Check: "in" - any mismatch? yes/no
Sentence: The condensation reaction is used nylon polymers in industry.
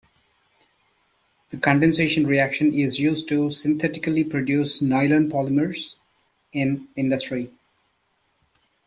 no